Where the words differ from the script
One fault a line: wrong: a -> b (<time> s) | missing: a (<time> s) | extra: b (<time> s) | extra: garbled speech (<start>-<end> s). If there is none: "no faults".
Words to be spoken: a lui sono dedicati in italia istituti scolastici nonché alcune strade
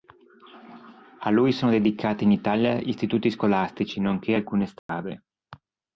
no faults